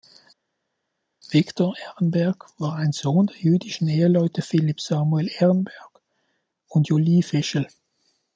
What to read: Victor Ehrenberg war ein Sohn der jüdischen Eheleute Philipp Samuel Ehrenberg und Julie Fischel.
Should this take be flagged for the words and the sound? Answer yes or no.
no